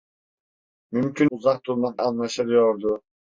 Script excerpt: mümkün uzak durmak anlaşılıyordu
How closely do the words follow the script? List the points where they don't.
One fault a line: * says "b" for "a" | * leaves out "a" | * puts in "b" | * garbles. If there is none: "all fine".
all fine